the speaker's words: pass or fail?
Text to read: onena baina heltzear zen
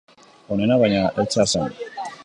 pass